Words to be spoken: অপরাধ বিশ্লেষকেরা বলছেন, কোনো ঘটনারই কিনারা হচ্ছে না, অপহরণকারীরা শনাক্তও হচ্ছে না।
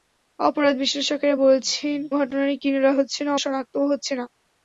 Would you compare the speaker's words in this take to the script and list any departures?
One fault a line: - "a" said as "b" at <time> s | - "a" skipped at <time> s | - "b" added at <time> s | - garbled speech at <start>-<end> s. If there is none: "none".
- "কোনো" skipped at 2.0 s
- "অপহরণকারীরা" skipped at 3.3 s